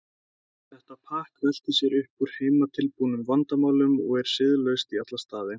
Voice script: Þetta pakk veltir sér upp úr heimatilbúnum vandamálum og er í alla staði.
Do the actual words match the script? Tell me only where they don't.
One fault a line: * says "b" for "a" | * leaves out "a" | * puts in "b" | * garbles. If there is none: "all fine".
* puts in "siðlaust"